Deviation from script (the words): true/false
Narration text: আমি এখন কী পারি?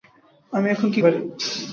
false